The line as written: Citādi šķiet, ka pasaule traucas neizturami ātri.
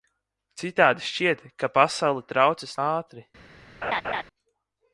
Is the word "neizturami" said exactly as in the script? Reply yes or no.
no